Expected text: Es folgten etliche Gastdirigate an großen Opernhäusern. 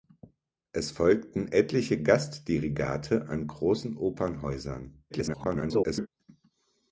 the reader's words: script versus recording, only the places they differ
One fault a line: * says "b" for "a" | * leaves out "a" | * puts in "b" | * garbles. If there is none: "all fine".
* garbles